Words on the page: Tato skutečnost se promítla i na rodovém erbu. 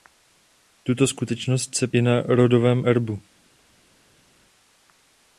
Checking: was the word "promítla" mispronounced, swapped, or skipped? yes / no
yes